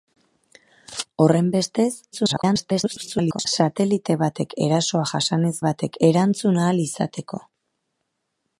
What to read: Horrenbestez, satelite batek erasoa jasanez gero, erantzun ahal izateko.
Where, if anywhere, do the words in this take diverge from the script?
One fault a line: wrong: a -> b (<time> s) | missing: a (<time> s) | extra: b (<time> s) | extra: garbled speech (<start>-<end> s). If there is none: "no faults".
extra: garbled speech (2.1-3.5 s)
wrong: gero -> batek (5.7 s)